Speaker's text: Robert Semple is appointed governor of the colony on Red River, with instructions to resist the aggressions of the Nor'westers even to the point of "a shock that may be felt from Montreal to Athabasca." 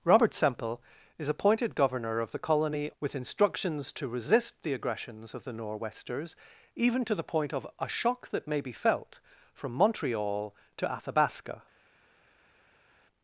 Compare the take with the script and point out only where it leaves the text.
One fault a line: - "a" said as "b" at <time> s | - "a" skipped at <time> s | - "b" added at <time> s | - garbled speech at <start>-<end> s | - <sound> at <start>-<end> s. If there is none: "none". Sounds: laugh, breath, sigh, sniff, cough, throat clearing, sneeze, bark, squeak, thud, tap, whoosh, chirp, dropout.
- "on Red River" skipped at 2.9 s